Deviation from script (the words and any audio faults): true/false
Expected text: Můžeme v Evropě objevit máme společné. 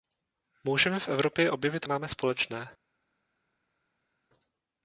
false